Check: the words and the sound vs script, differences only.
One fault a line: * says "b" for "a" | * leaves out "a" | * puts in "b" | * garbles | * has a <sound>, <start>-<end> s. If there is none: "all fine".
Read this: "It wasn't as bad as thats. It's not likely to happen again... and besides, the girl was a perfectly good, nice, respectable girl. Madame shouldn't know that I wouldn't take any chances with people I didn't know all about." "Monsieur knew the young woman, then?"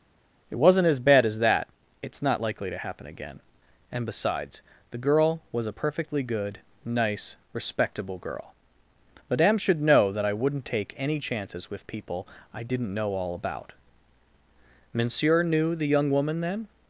* says "that" for "thats"
* says "should" for "shouldn't"